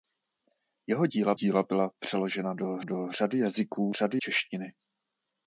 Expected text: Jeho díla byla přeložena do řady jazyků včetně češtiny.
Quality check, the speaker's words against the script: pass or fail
fail